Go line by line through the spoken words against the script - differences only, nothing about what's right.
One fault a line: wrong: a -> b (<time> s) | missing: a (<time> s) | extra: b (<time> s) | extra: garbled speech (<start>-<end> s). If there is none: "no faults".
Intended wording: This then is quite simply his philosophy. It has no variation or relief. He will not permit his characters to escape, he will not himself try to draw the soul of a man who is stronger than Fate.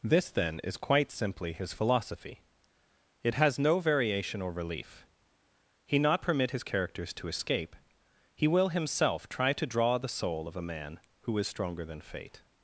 missing: will (6.0 s)
missing: not (8.7 s)